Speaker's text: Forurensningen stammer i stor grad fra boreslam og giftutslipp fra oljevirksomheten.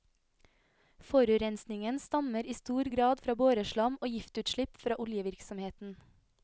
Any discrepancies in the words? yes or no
no